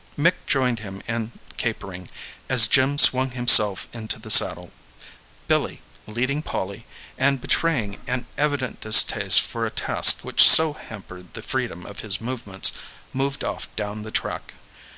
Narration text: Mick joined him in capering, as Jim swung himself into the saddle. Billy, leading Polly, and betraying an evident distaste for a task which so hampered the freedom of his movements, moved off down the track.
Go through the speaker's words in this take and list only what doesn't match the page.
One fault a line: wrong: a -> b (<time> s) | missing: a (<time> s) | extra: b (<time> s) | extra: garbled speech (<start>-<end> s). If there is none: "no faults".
no faults